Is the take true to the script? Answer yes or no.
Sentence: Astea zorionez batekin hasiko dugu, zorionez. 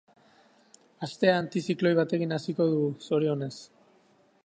no